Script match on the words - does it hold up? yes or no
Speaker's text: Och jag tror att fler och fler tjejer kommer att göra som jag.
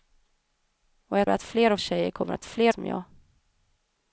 no